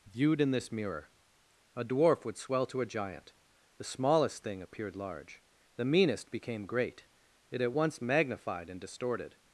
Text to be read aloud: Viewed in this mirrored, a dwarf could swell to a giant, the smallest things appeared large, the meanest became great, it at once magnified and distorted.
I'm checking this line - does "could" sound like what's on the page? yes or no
no